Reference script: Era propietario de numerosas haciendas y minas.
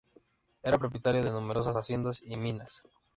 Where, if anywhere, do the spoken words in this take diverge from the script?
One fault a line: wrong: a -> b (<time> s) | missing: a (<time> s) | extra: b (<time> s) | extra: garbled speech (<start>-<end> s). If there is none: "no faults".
no faults